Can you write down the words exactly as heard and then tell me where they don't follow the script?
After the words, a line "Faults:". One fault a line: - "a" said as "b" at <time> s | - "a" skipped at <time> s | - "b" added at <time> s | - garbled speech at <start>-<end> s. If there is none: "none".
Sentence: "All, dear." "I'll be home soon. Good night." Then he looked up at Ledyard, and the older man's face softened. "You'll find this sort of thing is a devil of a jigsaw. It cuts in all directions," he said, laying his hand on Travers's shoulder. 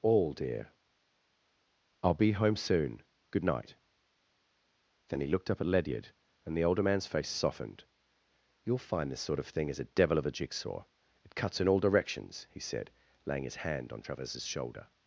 "All, dear." "I'll be home soon. Good night." Then he looked up at Ledyard, and the older man's face softened. "You'll find this sort of thing is a devil of a jigsaw. It cuts in all directions," he said, laying his hand on Travers's shoulder.
Faults:
none